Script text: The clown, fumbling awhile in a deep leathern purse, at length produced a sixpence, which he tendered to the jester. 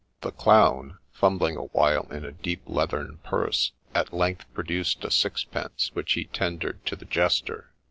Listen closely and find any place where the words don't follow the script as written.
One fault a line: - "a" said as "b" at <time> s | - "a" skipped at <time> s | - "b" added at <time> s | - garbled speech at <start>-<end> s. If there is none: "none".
none